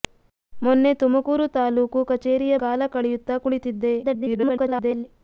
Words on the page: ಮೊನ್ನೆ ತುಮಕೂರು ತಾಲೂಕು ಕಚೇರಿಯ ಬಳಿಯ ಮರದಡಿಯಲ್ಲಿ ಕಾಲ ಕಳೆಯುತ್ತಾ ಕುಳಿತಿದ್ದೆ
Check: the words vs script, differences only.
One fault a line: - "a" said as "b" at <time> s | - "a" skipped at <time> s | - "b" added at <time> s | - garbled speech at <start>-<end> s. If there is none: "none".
- "ಬಳಿಯ ಮರದಡಿಯಲ್ಲಿ" skipped at 2.5 s
- garbled speech at 4.0-5.1 s